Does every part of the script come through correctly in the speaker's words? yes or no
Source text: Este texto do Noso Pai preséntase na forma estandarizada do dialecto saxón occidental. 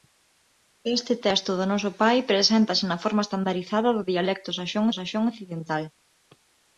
no